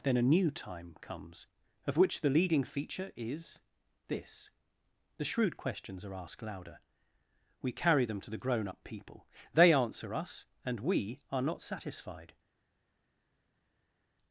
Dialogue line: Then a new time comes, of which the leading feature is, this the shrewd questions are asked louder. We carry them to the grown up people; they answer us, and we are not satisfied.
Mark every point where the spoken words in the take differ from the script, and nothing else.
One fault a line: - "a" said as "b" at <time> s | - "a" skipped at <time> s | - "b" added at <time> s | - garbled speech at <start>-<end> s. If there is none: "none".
none